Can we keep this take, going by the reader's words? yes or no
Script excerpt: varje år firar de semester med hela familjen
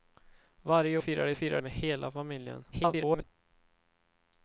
no